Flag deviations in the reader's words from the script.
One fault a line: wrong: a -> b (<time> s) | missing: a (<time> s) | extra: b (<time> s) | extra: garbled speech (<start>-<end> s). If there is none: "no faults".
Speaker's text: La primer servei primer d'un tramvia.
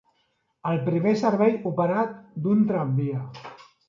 wrong: La -> El (0.7 s)
wrong: primer -> operat (1.7 s)